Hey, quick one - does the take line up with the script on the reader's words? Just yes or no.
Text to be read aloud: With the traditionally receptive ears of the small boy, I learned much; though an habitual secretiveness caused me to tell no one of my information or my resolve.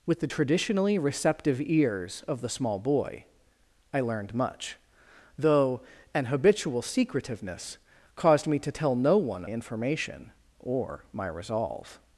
no